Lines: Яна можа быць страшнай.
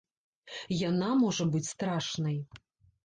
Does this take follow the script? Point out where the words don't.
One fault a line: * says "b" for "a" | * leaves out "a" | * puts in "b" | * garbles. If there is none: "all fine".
all fine